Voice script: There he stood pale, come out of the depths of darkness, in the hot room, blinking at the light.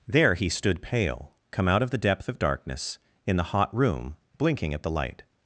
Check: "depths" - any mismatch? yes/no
yes